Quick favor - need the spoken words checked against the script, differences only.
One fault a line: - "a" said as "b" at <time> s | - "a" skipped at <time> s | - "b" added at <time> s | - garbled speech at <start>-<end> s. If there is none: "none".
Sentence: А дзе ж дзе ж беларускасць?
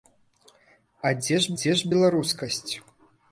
none